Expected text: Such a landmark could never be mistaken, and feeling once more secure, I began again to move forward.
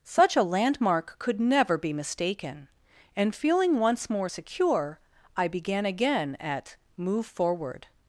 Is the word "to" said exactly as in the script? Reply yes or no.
no